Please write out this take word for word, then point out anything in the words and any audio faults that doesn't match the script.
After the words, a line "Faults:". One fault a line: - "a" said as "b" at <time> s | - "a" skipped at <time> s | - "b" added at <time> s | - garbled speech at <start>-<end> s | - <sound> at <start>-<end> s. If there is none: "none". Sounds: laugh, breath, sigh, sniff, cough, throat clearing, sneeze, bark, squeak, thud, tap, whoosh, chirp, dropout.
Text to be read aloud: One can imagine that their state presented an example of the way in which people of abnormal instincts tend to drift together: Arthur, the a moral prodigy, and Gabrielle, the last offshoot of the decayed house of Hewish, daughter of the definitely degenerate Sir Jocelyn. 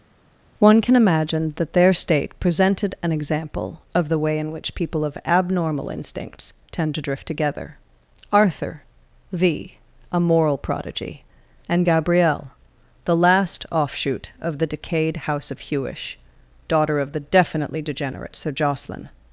One can imagine that their state presented an example of the way in which people of abnormal instincts tend to drift together: Arthur, v a moral prodigy, and Gabrielle, the last offshoot of the decayed house of Hewish, daughter of the definitely degenerate Sir Jocelyn.
Faults:
- "the" said as "v" at 9.3 s